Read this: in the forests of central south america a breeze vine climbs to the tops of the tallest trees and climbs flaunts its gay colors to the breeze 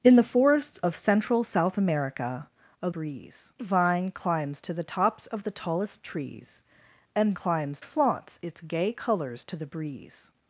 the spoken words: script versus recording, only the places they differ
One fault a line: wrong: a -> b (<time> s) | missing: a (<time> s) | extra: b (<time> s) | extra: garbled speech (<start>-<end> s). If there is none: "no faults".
no faults